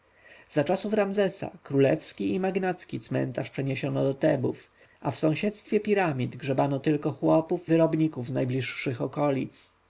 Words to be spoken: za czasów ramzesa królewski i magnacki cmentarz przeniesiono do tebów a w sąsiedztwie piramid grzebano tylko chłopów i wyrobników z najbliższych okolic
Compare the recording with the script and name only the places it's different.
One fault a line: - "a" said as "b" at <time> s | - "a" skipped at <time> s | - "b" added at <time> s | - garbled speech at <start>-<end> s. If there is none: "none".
- "i" skipped at 7.7 s